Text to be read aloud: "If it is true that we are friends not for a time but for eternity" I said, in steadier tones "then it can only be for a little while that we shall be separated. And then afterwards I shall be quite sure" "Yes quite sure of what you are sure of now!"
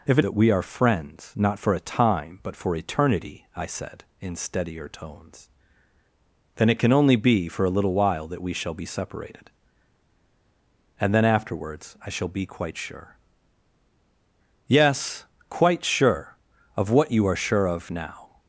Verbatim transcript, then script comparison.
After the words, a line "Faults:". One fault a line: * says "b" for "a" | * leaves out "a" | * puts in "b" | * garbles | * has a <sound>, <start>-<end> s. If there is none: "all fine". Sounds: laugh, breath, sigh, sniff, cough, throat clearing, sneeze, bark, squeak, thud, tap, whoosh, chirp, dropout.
"If it that we are friends not for a time but for eternity" I said, in steadier tones "then it can only be for a little while that we shall be separated. And then afterwards I shall be quite sure" "Yes quite sure of what you are sure of now!"
Faults:
* leaves out "is true"